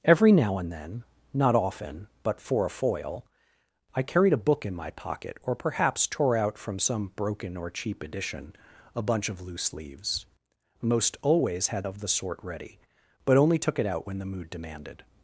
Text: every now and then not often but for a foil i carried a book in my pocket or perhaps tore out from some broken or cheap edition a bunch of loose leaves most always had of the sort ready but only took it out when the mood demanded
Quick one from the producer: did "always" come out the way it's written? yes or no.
yes